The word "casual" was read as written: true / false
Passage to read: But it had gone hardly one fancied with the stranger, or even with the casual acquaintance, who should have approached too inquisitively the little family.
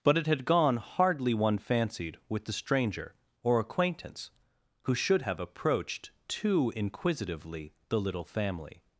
false